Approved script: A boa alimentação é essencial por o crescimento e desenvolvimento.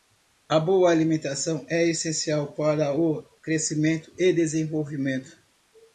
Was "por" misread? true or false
true